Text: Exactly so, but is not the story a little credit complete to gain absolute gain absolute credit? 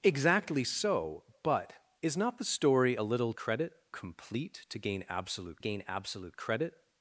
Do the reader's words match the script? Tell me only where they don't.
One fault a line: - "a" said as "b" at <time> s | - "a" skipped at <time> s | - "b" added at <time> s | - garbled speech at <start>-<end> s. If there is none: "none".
none